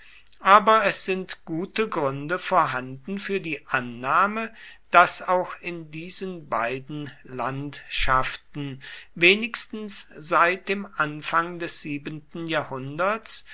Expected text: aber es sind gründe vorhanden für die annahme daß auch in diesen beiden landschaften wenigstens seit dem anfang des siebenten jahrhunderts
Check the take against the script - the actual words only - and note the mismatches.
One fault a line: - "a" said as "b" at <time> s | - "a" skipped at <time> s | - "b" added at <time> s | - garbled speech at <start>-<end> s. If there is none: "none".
- "gute" added at 1.4 s